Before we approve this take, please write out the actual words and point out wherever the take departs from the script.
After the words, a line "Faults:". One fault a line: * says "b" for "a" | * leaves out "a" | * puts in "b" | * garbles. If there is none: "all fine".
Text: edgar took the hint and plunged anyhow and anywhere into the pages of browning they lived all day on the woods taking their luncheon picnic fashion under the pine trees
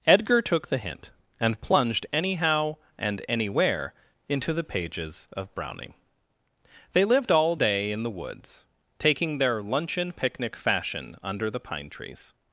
edgar took the hint and plunged anyhow and anywhere into the pages of browning they lived all day in the woods taking their luncheon picnic fashion under the pine trees
Faults:
* says "in" for "on"